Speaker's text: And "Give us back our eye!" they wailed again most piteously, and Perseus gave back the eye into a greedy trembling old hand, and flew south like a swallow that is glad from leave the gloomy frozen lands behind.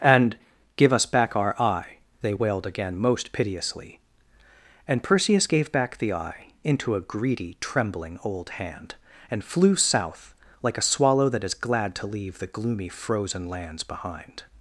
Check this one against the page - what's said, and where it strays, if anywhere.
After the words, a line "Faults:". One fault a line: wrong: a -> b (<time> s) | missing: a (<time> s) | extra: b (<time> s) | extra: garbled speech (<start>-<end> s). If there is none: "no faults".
And "Give us back our eye!" they wailed again most piteously, and Perseus gave back the eye into a greedy trembling old hand, and flew south like a swallow that is glad to leave the gloomy frozen lands behind.
Faults:
wrong: from -> to (11.9 s)